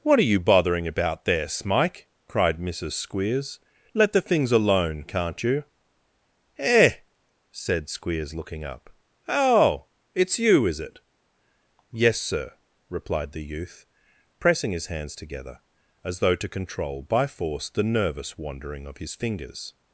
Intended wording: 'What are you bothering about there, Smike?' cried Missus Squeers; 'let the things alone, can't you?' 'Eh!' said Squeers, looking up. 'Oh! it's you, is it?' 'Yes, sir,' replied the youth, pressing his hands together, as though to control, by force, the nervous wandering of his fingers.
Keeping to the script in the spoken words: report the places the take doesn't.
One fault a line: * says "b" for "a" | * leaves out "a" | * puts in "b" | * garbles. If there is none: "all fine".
all fine